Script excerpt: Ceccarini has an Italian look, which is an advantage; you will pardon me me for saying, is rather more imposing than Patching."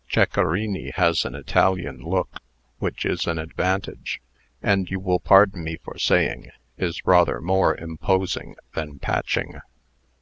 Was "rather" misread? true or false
false